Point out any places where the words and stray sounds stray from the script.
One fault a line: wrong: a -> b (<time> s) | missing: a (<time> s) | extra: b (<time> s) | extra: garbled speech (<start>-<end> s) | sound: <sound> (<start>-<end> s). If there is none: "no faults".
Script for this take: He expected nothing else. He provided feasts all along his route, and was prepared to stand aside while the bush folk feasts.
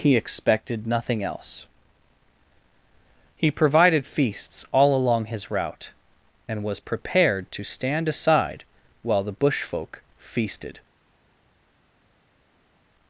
wrong: feasts -> feasted (10.2 s)